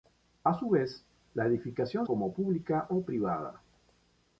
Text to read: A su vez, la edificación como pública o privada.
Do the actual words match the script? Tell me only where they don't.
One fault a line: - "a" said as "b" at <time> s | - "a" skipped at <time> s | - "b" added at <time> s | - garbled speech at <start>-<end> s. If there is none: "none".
none